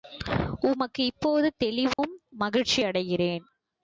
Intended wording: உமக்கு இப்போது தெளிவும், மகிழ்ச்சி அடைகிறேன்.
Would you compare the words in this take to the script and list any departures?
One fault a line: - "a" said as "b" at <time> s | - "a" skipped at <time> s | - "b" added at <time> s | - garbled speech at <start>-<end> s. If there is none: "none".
none